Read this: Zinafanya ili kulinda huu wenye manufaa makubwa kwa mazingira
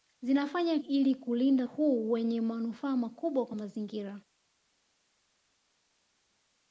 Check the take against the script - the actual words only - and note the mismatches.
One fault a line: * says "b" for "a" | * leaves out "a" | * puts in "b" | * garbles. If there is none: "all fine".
all fine